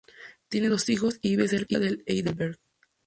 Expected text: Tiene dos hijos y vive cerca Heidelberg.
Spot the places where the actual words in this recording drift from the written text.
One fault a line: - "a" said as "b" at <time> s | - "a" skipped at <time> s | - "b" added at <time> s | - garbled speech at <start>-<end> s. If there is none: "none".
- "de" added at 1.8 s